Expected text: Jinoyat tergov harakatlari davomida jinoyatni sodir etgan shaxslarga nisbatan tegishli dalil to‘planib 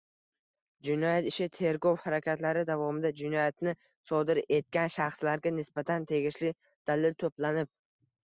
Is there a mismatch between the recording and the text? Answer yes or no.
yes